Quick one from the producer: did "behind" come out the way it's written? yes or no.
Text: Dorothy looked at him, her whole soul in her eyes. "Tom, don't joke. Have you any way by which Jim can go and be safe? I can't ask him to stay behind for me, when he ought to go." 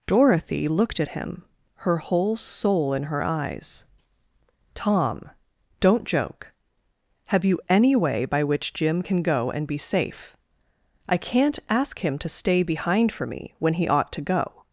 yes